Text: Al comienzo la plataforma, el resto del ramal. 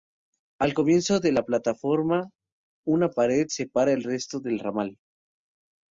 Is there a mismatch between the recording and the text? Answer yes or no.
yes